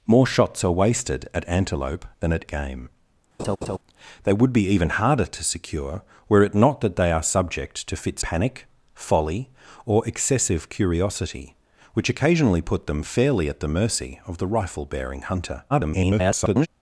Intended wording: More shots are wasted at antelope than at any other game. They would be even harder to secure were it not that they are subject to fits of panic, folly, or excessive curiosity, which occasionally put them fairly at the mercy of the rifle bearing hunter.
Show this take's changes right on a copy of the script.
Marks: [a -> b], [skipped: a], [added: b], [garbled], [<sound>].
More shots are wasted at antelope than at [skipped: any other] game. [laugh] They would be even harder to secure were it not that they are subject to fits [skipped: of] panic, folly, or excessive curiosity, which occasionally put them fairly at the mercy of the rifle bearing hunter. [garbled]